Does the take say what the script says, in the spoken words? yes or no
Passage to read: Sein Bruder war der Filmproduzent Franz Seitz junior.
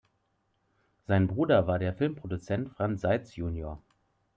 yes